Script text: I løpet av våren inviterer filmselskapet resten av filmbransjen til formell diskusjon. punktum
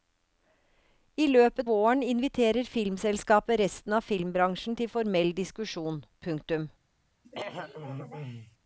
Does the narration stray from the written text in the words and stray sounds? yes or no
yes